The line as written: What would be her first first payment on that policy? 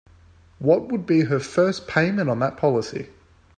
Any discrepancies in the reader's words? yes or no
yes